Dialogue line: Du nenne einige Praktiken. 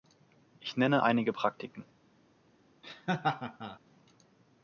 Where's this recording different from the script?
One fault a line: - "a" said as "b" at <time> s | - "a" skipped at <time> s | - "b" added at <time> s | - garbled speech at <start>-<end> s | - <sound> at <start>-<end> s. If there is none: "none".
- "Du" said as "Ich" at 0.6 s
- laugh at 2.8-3.8 s